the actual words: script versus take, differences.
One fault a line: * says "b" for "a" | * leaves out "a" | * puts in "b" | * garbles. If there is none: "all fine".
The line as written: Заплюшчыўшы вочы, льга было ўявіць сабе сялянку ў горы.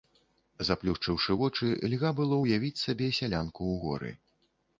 all fine